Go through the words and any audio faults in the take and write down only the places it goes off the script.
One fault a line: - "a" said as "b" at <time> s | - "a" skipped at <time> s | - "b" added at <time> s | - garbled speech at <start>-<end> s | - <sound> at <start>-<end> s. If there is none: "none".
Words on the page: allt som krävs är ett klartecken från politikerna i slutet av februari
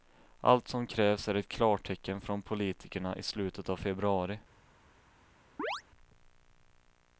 - chirp at 5.6-5.8 s